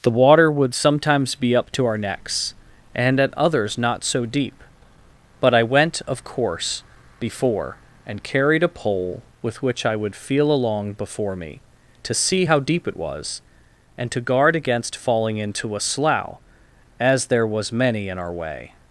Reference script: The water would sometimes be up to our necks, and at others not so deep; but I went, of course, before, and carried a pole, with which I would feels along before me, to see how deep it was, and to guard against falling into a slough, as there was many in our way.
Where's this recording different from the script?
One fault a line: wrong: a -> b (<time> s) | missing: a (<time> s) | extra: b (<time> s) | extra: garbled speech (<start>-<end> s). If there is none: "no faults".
wrong: feels -> feel (10.2 s)